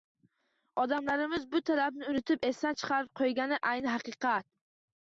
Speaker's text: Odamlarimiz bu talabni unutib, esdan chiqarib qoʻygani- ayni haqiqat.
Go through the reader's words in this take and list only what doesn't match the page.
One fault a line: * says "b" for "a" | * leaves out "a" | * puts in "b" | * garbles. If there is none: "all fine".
all fine